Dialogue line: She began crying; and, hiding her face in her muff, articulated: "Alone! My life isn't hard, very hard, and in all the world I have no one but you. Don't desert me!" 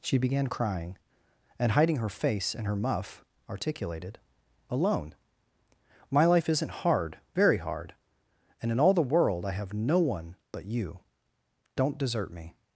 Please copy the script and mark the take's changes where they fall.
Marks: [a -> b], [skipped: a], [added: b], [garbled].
She began crying; and, hiding her face in her muff, articulated: "Alone! My life isn't hard, very hard, and in all the world I have no one but you. Don't desert me!"